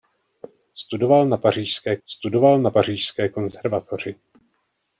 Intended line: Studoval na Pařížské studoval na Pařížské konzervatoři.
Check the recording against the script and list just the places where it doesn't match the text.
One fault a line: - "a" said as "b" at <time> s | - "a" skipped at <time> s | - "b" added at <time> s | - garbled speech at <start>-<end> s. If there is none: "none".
none